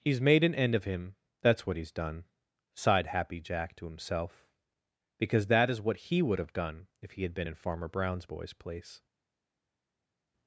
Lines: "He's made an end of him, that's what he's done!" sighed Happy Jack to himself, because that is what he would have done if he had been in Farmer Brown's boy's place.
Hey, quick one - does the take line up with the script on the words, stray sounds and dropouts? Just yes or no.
yes